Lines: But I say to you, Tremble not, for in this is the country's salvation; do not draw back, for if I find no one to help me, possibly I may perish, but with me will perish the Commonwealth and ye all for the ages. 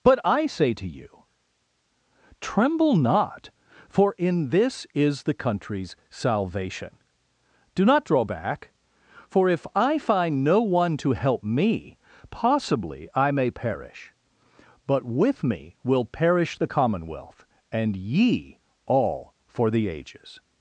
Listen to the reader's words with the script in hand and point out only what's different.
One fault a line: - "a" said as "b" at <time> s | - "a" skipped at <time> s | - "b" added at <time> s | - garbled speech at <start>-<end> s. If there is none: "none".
none